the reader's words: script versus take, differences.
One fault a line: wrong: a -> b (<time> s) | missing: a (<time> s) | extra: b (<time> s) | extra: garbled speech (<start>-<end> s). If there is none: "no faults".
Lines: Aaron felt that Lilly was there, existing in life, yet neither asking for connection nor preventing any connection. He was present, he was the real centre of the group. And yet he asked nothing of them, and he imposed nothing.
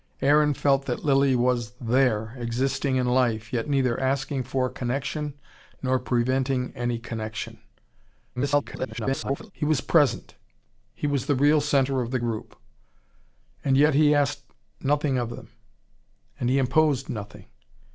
extra: garbled speech (8.4-9.5 s)